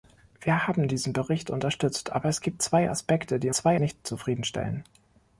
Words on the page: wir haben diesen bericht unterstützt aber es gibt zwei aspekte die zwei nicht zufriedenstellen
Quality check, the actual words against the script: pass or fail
pass